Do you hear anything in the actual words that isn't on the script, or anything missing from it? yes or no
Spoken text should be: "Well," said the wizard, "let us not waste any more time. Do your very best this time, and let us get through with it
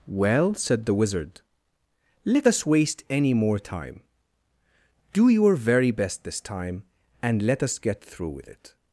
yes